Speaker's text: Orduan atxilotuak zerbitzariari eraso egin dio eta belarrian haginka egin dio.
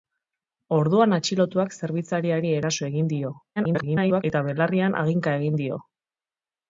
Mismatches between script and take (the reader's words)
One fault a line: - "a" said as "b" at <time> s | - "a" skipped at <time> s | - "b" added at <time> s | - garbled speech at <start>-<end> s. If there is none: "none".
- garbled speech at 3.6-4.2 s